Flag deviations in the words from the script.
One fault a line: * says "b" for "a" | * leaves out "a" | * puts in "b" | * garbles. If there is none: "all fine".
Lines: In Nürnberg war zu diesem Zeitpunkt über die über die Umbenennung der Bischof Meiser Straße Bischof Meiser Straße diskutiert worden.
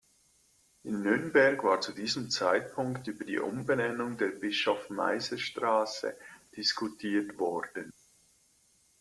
* leaves out "über die"
* leaves out "Bischof Meiser Straße"